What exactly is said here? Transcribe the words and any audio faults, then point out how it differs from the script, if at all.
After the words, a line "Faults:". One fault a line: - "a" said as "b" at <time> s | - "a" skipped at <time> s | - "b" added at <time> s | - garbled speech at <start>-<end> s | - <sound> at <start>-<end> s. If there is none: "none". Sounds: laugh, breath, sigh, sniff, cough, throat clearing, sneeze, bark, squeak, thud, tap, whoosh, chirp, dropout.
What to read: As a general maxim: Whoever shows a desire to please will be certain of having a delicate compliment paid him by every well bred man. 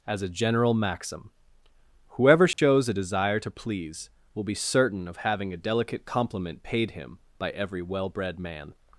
As a general maxim: Whoever shows a desire to please will be certain of having a delicate compliment paid him by every well bred man.
Faults:
- dropout at 2.5-2.6 s